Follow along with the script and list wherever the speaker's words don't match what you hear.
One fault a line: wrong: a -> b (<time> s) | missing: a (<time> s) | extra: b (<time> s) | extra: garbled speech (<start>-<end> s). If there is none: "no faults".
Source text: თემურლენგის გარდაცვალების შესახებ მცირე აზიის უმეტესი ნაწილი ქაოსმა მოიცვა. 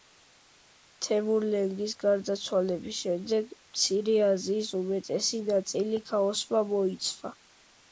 wrong: შესახებ -> შემდეგ (3.0 s)